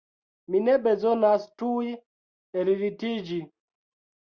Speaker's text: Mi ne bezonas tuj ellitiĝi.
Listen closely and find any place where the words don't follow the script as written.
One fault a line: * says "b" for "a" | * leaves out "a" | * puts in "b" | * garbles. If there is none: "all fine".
all fine